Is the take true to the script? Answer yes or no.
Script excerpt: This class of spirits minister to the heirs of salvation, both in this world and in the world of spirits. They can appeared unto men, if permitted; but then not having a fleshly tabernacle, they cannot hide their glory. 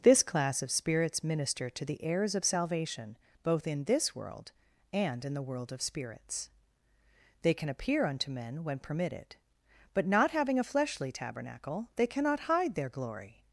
no